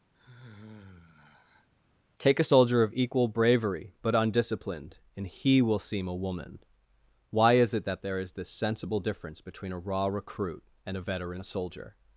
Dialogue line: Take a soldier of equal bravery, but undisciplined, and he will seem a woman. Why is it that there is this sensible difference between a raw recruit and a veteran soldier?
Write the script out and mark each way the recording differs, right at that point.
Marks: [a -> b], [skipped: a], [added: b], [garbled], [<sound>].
[sigh] Take a soldier of equal bravery, but undisciplined, and he will seem a woman. Why is it that there is this sensible difference between a raw recruit and a veteran soldier?